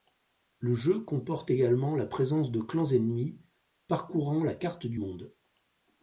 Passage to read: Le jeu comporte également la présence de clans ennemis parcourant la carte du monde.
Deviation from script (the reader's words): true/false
false